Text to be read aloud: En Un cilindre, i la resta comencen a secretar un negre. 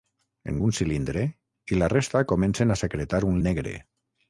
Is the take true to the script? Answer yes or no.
yes